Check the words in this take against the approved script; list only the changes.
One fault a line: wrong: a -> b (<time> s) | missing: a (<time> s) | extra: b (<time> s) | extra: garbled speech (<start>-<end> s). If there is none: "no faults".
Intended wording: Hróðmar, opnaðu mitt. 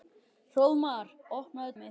no faults